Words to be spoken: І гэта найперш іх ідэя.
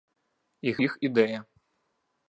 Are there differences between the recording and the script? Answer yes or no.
yes